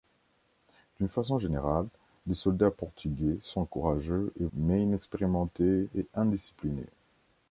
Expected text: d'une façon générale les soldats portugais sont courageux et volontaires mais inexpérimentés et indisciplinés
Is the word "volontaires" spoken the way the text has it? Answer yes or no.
no